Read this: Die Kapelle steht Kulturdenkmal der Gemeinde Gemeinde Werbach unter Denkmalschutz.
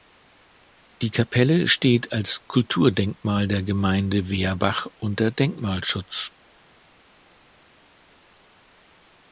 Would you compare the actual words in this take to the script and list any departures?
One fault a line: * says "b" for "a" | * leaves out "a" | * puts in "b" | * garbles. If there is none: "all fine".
* puts in "als"
* leaves out "Gemeinde"